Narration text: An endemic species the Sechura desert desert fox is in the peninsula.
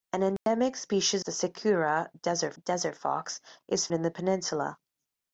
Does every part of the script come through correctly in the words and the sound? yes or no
no